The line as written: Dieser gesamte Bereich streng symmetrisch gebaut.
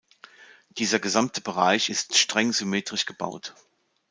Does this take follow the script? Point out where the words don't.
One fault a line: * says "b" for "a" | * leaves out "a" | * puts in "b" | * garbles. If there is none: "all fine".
* puts in "ist"